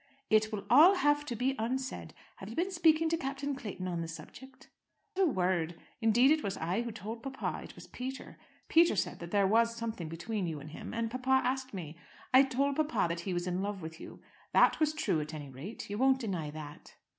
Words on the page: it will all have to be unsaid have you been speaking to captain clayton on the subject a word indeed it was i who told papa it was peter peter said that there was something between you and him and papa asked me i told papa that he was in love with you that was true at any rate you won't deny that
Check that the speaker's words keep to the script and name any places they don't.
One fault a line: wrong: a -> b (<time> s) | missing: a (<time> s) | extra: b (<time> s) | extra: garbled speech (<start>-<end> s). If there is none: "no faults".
no faults